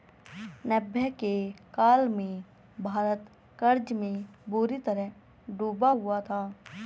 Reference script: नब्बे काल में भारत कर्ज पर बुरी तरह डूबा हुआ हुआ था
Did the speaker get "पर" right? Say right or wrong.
wrong